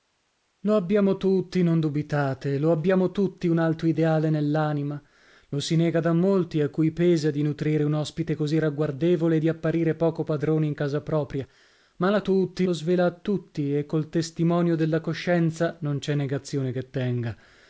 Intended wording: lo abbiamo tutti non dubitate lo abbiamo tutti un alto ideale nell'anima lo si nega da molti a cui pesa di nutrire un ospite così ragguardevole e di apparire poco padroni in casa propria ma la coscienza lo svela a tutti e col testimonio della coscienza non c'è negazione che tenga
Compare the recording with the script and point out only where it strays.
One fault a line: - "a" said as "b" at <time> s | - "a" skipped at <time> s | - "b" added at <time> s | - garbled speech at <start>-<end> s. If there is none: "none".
- "coscienza" said as "tutti" at 12.2 s